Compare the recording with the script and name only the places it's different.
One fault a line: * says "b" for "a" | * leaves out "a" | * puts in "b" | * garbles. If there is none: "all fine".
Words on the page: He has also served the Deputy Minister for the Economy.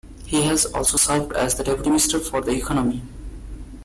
* puts in "as"